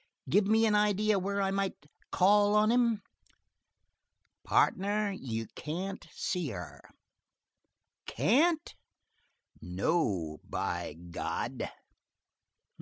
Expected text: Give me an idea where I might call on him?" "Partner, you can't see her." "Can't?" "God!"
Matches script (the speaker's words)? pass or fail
fail